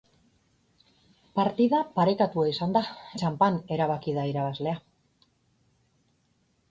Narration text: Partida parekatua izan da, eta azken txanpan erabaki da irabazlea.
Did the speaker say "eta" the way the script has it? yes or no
no